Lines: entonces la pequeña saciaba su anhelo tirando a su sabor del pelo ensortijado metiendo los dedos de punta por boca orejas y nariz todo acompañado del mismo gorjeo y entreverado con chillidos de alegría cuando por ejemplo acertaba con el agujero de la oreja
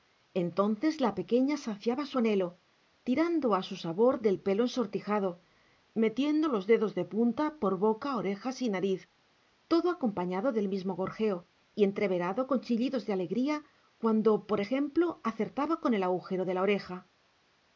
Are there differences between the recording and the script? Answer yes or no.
no